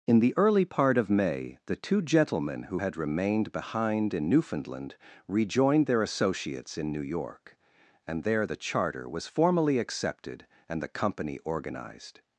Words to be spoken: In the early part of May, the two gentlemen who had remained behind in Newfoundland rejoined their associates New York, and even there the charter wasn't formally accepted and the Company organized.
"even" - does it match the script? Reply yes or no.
no